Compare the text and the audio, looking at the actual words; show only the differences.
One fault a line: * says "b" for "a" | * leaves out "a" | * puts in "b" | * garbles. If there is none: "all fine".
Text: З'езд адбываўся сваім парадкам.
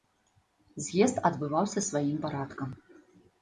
all fine